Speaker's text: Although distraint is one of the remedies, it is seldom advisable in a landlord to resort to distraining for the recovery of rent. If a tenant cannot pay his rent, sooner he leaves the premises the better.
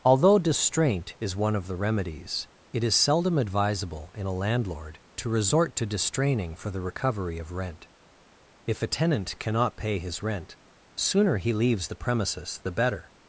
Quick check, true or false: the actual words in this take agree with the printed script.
true